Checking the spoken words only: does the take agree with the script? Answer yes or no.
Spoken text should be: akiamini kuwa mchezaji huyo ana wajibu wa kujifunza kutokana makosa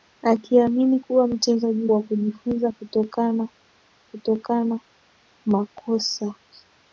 no